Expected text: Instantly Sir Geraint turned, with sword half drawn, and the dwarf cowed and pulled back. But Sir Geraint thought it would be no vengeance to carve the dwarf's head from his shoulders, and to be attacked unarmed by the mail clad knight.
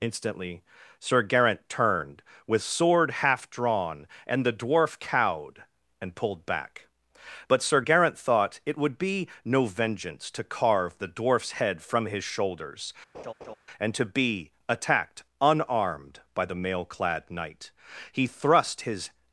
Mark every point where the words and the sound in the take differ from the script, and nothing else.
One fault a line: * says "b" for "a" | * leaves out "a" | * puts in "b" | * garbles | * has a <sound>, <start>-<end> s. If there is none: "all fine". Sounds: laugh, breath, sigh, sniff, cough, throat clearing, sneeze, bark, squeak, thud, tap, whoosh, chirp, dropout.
* has a laugh, 13.1-13.6 s
* puts in "He thrust his"